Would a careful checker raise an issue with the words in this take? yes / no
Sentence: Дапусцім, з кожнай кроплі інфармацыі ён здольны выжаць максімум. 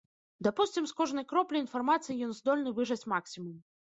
no